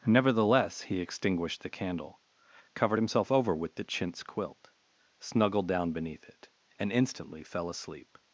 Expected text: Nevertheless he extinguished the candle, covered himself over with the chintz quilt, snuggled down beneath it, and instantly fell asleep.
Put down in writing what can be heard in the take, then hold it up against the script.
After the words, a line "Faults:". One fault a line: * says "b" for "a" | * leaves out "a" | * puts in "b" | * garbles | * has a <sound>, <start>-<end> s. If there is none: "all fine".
Nevertheless he extinguished the candle, covered himself over with the chintz quilt, snuggled down beneath it, and instantly fell asleep.
Faults:
all fine